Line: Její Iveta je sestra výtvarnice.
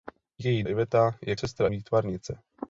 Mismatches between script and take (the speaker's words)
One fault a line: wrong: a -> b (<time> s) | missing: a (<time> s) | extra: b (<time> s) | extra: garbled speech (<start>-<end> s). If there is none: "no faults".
no faults